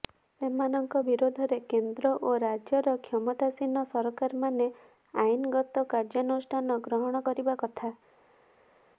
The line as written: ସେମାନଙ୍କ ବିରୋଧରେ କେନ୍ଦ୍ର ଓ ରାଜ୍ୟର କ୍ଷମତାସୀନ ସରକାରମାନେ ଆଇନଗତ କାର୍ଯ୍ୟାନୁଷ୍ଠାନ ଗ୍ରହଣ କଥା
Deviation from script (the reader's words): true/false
true